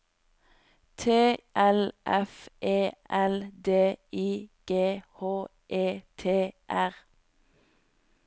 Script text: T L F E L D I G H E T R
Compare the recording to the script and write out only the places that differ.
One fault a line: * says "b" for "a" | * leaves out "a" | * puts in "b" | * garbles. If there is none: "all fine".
all fine